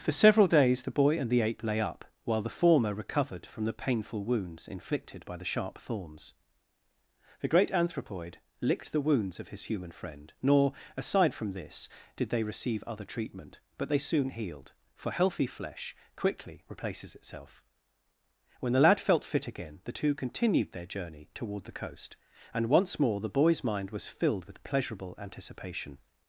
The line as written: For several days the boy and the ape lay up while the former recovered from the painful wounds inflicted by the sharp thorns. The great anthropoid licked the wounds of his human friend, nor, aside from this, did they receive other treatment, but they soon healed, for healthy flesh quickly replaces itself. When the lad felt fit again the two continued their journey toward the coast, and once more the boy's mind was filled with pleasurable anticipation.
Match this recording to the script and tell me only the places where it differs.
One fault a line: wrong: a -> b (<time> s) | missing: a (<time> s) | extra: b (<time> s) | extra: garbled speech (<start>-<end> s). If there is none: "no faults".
no faults